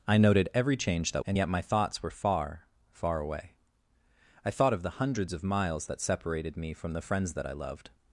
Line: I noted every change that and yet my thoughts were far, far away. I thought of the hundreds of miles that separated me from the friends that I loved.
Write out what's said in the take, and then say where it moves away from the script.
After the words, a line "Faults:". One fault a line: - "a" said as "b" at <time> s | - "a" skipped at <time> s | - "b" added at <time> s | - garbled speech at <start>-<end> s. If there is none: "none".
I noted every change that and yet my thoughts were far, far away. I thought of the hundreds of miles that separated me from the friends that I loved.
Faults:
none